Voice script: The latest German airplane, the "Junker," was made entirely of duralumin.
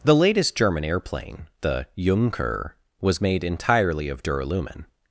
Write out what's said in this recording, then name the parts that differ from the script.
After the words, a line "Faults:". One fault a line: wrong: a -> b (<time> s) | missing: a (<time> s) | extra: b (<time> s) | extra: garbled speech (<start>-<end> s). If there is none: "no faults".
The latest German airplane, the "Junker," was made entirely of duralumin.
Faults:
no faults